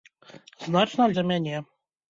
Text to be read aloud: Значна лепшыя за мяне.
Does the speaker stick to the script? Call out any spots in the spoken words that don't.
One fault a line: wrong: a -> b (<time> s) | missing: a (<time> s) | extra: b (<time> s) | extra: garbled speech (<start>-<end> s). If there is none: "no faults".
missing: лепшыя (1.1 s)